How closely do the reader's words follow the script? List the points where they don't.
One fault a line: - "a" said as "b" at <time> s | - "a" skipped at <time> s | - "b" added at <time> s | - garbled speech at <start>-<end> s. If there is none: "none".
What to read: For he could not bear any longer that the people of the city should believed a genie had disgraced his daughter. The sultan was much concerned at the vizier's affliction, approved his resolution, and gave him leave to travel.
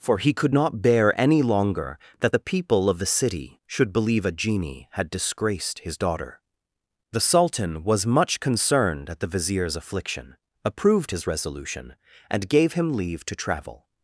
- "believed" said as "believe" at 3.9 s